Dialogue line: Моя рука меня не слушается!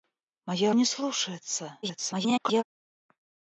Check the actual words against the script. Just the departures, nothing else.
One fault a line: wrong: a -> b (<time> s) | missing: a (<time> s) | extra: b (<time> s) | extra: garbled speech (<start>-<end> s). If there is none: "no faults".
missing: рука меня (0.7 s)
extra: garbled speech (1.8-2.6 s)